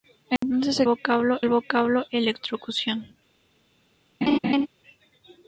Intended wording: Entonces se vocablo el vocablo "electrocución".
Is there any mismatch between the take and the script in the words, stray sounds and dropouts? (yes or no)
yes